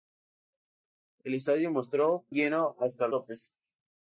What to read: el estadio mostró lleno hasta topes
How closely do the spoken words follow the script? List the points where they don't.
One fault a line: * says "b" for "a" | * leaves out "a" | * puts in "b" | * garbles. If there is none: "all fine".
all fine